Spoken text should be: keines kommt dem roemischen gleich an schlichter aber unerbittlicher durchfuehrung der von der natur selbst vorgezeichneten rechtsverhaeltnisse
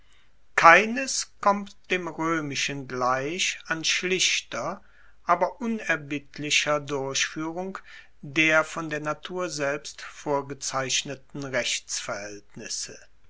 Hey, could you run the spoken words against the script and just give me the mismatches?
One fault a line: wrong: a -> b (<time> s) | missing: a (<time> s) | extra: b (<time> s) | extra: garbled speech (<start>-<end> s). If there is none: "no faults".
no faults